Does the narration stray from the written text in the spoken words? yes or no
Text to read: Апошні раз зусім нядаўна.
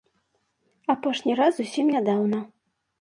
no